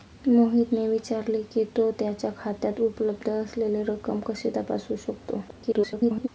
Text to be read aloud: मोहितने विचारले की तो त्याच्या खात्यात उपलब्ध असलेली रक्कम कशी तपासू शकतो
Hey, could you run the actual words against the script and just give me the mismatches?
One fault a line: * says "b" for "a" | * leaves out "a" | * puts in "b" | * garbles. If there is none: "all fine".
* garbles